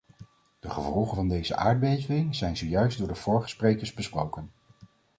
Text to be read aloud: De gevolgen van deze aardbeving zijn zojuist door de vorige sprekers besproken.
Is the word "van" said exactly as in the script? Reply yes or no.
yes